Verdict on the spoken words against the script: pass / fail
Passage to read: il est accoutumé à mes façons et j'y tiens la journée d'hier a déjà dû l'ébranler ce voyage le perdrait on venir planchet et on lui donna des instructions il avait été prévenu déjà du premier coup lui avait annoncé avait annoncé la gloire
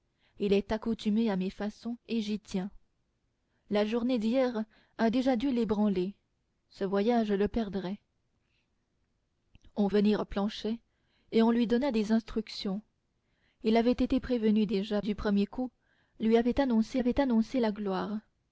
pass